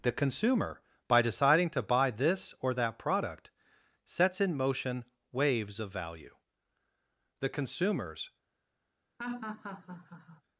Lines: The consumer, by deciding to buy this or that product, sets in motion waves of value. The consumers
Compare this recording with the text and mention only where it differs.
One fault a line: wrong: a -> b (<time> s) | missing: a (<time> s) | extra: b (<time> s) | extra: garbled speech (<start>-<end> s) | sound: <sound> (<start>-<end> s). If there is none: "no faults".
sound: laugh (9.2-10.4 s)